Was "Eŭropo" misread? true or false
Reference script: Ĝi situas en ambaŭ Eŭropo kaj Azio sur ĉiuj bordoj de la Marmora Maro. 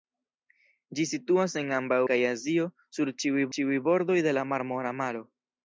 true